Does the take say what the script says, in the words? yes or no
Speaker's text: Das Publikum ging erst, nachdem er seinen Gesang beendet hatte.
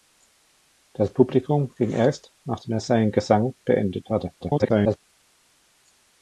no